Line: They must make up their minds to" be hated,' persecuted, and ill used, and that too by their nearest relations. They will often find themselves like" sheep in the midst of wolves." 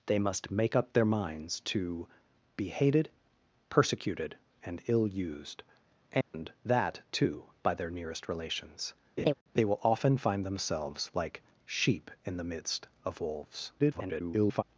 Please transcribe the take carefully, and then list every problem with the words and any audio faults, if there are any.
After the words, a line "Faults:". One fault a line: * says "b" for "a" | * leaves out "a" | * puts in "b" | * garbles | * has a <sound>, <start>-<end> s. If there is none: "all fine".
They must make up their minds to" be hated,' persecuted, and ill used, and that too by their nearest relations. They will often find themselves like" sheep in the midst of wolves." [garbled]
Faults:
* has a dropout, 6.2-6.3 s
* has a laugh, 9.2-9.3 s
* garbles